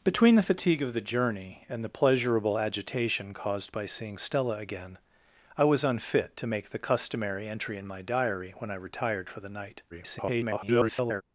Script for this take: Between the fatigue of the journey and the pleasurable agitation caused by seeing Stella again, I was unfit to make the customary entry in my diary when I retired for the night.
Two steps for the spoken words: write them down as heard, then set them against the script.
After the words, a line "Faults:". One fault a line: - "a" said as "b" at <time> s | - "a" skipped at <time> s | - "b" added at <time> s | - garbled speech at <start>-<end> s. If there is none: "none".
Between the fatigue of the journey and the pleasurable agitation caused by seeing Stella again, I was unfit to make the customary entry in my diary when I retired for the night. [garbled]
Faults:
- garbled speech at 9.9-11.2 s